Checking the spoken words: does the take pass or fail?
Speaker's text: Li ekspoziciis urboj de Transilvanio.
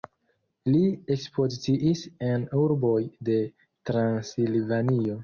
fail